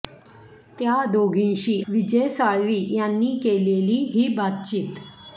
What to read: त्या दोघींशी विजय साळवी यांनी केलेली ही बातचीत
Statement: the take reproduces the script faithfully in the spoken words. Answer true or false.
true